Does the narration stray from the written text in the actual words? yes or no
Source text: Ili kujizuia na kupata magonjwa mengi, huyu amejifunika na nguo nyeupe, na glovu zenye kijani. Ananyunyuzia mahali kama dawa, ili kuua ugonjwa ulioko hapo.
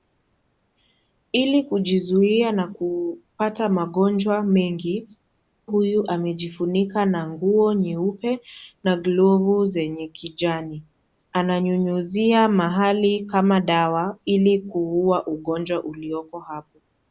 no